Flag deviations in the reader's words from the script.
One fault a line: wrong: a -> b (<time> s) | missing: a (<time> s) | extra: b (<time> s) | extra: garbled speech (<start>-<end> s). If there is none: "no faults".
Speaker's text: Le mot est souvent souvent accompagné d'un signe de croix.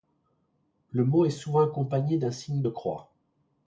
missing: souvent (1.6 s)